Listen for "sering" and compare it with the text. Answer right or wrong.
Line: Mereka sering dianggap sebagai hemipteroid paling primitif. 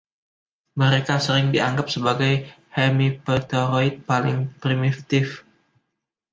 right